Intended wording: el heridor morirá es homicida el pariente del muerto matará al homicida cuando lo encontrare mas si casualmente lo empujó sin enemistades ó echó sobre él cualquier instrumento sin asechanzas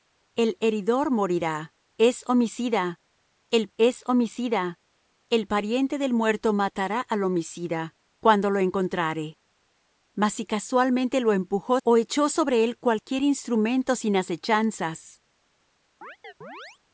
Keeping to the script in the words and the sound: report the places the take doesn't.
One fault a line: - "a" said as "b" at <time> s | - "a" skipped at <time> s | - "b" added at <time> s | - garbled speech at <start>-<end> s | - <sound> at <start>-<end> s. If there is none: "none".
- "es homicida el" added at 3.8 s
- "sin enemistades" skipped at 11.8 s
- chirp at 16.0-16.8 s